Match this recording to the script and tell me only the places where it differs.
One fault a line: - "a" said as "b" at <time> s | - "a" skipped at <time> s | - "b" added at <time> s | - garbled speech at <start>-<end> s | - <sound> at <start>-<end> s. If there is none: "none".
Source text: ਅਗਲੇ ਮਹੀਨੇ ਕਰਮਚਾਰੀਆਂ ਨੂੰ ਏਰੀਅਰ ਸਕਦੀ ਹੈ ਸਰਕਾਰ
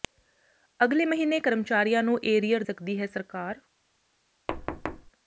- thud at 4.5-5.1 s